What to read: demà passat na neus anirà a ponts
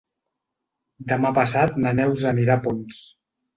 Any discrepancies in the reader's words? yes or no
no